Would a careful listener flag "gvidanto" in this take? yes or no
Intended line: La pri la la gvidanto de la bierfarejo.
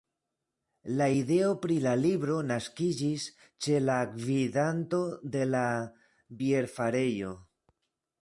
no